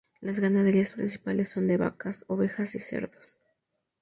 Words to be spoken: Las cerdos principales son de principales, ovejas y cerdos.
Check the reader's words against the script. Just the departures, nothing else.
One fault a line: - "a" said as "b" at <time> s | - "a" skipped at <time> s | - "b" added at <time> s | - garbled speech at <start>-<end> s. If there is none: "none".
- "cerdos" said as "ganaderías" at 0.4 s
- "principales" said as "vacas" at 1.7 s